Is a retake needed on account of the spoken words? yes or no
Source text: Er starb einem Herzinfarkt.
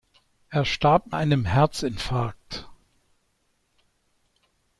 no